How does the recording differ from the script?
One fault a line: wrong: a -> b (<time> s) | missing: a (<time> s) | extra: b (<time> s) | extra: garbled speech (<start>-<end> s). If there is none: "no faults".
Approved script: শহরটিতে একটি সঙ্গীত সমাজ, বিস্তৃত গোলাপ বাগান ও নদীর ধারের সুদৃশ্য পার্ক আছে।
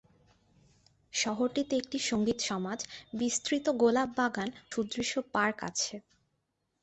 missing: ও নদীর ধারের (4.5 s)